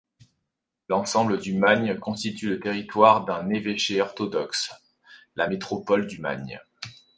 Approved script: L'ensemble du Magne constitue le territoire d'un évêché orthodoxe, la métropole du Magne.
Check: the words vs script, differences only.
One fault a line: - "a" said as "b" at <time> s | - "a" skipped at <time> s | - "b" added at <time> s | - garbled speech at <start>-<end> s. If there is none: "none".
none